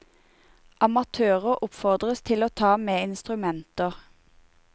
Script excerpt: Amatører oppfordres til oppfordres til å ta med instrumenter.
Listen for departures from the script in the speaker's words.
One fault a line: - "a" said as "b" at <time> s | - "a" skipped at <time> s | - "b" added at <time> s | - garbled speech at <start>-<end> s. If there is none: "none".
- "oppfordres til" skipped at 2.5 s